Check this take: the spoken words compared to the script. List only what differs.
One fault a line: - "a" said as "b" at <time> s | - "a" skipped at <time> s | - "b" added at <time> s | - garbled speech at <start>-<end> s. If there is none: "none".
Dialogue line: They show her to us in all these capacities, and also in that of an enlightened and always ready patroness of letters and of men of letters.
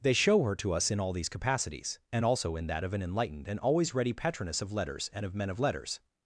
none